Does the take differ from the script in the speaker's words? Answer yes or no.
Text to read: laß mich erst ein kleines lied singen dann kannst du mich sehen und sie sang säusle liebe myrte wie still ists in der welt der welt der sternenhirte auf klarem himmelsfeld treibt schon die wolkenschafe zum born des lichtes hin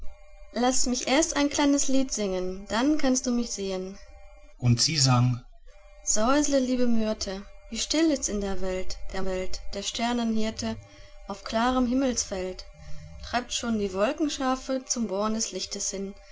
no